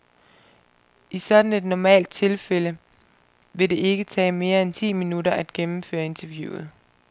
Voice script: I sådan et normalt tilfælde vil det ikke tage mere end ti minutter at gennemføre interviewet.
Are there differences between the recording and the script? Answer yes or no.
no